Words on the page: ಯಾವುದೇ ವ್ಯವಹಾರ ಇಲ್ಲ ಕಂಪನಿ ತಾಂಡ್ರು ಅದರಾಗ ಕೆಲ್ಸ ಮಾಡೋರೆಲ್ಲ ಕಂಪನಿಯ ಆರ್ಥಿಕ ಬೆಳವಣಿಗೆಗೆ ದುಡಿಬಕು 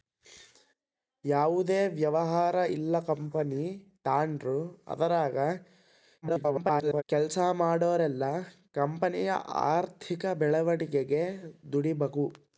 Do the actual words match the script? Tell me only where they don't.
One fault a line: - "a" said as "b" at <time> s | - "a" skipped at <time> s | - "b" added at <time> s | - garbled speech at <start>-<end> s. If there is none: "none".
- garbled speech at 6.2-7.0 s